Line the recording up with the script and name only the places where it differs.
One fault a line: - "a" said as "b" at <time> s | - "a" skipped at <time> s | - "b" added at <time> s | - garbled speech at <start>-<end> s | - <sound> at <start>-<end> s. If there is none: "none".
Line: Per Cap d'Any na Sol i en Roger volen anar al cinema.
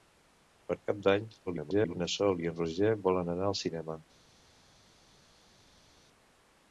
- garbled speech at 1.5-1.9 s